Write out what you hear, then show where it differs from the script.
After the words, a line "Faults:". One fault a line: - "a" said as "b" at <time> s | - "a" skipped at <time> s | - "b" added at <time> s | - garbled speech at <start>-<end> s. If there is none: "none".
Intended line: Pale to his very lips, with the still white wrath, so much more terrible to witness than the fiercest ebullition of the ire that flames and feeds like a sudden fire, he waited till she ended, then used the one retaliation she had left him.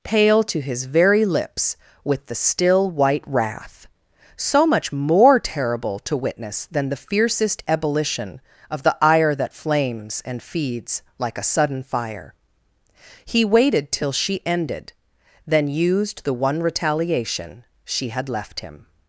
Pale to his very lips, with the still white wrath, so much more terrible to witness than the fiercest ebullition of the ire that flames and feeds like a sudden fire, he waited till she ended, then used the one retaliation she had left him.
Faults:
none